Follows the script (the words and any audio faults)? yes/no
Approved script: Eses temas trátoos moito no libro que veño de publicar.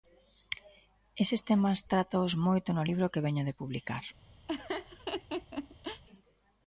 no